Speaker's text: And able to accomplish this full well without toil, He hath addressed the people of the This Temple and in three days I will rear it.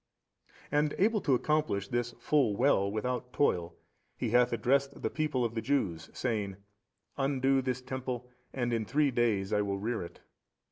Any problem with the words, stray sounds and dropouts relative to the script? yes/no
yes